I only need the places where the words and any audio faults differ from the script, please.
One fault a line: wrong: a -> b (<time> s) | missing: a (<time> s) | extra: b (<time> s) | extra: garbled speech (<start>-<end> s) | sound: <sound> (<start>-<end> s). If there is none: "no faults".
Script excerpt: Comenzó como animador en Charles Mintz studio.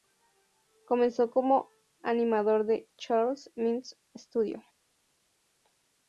no faults